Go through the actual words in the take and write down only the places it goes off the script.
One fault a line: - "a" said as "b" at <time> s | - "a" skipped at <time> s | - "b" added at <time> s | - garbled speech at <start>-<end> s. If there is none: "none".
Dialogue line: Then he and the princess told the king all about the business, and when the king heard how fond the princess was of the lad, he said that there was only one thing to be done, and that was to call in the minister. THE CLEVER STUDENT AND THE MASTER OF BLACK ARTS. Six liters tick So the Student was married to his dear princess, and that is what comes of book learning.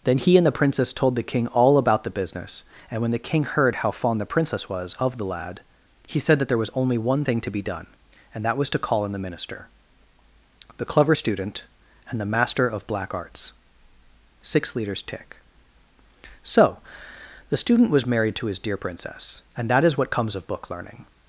none